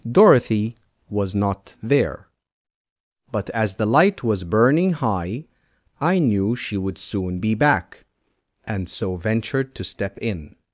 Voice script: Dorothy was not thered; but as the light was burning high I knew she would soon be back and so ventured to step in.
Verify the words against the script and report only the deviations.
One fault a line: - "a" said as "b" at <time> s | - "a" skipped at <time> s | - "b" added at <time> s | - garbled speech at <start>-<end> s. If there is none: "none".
- "thered" said as "there" at 1.8 s